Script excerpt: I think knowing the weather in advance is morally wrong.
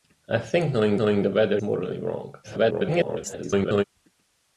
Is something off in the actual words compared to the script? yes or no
yes